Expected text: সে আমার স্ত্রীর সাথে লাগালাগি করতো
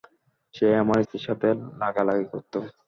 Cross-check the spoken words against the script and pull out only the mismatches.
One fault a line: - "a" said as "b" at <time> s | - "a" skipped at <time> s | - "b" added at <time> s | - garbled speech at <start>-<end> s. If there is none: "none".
none